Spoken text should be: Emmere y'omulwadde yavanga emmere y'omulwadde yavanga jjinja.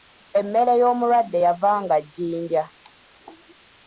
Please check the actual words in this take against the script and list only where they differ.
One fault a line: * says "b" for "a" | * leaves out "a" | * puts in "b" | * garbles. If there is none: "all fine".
* leaves out "emmere y'omulwadde yavanga"